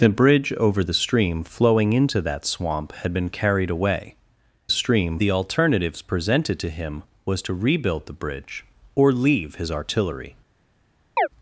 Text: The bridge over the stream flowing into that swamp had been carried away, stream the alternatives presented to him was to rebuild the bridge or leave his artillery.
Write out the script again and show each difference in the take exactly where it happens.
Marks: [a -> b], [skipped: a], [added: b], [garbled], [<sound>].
The bridge over the stream flowing into that swamp had been carried away, stream the alternatives presented to him was to rebuild the bridge or leave his artillery. [chirp]